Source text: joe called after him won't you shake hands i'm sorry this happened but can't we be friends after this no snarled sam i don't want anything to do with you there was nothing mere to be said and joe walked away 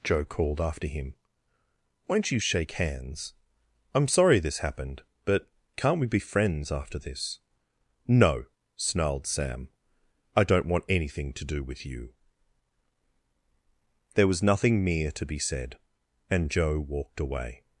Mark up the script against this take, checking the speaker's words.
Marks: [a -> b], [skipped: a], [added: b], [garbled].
joe called after him won't you shake hands i'm sorry this happened but can't we be friends after this no snarled sam i don't want anything to do with you there was nothing mere to be said and joe walked away